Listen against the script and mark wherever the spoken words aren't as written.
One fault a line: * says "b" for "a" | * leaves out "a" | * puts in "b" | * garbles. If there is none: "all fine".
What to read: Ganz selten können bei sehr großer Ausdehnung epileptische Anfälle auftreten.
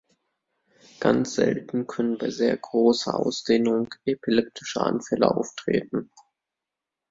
all fine